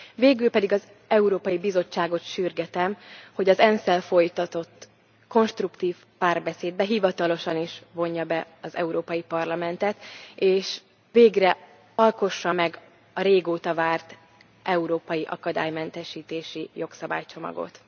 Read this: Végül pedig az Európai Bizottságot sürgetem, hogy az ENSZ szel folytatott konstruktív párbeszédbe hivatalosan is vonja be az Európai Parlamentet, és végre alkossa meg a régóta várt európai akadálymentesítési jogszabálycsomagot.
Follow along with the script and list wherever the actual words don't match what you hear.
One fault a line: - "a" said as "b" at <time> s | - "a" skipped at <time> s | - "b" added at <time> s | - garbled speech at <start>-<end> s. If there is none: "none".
none